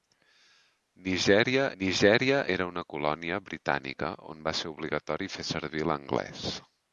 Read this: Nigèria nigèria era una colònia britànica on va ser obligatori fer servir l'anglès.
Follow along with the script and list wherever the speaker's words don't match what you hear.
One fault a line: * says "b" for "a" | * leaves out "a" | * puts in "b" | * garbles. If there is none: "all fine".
all fine